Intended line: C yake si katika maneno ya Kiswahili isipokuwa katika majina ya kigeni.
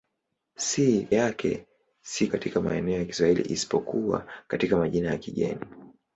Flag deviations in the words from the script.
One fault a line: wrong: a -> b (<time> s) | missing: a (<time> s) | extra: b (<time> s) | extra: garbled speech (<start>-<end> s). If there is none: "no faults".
no faults